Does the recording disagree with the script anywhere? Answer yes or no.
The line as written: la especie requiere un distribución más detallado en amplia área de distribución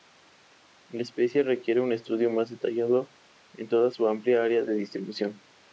yes